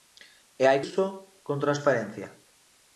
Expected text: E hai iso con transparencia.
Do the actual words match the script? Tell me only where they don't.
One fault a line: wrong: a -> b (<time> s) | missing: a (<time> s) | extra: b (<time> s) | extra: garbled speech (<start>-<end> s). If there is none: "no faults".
no faults